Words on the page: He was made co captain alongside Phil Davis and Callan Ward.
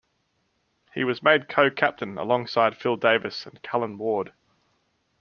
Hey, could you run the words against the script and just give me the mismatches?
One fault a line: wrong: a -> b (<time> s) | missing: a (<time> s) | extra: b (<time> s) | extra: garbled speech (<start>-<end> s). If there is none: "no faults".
no faults